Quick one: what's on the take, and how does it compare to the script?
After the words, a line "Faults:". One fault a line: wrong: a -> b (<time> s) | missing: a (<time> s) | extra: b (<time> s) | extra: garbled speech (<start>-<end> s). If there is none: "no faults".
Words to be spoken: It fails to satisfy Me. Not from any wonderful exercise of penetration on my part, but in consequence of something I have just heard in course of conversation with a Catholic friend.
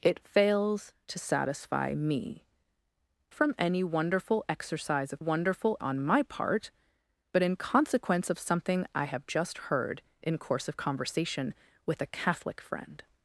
It fails to satisfy Me. From any wonderful exercise of wonderful on my part, but in consequence of something I have just heard in course of conversation with a Catholic friend.
Faults:
missing: Not (2.5 s)
wrong: penetration -> wonderful (5.2 s)